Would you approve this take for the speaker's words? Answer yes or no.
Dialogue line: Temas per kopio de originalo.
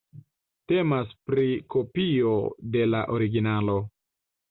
no